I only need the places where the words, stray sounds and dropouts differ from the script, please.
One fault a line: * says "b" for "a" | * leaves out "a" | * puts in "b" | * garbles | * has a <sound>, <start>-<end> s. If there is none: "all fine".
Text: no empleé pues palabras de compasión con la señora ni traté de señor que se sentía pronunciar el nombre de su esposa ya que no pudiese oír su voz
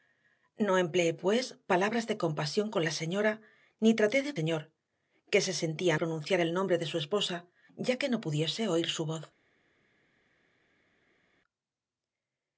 all fine